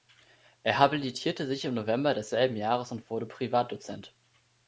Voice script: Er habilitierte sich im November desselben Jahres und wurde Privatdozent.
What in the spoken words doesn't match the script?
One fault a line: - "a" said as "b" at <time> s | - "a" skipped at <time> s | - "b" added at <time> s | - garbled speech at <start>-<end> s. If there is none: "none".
none